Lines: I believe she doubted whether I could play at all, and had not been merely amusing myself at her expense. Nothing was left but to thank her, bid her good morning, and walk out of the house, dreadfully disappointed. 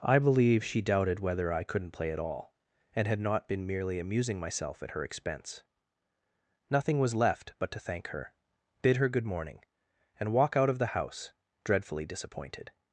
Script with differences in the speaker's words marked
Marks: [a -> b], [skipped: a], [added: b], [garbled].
I believe she doubted whether I [could -> couldn't] play at all, and had not been merely amusing myself at her expense. Nothing was left but to thank her, bid her good morning, and walk out of the house, dreadfully disappointed.